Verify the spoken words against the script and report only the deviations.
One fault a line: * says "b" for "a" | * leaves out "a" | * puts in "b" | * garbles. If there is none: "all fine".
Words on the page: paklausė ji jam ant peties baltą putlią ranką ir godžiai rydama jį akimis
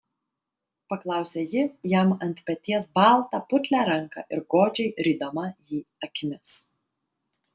all fine